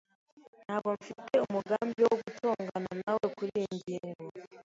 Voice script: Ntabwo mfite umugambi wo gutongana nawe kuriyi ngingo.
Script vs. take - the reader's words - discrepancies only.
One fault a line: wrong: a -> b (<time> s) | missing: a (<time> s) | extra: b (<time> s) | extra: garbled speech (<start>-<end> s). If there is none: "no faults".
no faults